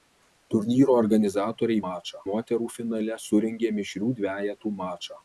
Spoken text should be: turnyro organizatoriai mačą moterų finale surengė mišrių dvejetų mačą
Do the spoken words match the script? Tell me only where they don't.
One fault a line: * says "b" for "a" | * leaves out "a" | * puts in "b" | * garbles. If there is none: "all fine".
all fine